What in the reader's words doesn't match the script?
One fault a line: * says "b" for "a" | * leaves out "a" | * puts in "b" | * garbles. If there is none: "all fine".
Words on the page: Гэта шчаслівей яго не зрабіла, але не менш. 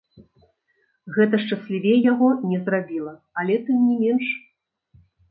* puts in "тым"